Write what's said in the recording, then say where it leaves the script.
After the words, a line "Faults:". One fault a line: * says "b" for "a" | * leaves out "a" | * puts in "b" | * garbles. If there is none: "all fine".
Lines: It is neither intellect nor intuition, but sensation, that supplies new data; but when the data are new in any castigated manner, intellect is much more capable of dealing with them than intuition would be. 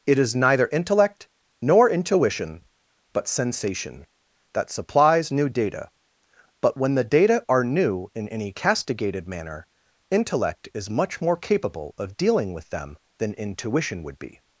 It is neither intellect nor intuition, but sensation, that supplies new data; but when the data are new in any castigated manner, intellect is much more capable of dealing with them than intuition would be.
Faults:
all fine